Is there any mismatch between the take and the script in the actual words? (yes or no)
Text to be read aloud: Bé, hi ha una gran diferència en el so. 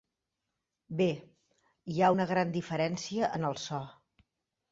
no